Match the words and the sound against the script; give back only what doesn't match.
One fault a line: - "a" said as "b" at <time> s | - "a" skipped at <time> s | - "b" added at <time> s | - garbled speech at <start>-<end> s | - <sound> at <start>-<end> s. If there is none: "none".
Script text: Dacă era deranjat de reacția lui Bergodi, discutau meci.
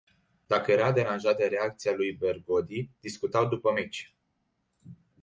- "după" added at 3.5 s